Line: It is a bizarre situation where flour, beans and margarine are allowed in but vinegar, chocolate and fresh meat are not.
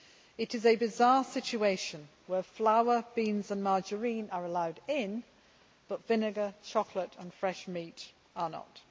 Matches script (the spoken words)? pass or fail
pass